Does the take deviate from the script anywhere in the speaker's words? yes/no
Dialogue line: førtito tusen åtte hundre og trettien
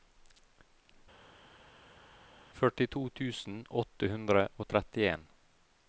no